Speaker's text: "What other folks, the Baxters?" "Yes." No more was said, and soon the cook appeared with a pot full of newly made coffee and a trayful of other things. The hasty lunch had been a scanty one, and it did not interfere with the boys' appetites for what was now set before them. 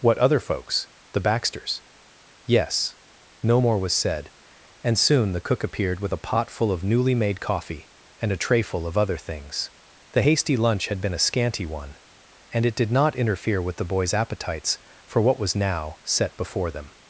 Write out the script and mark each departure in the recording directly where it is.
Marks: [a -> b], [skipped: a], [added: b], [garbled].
"What other folks, the Baxters?" "Yes." No more was said, and soon the cook appeared with a pot full of newly made coffee and a trayful of other things. The hasty lunch had been a scanty one, and it did not interfere with the boys' appetites for what was now set before them.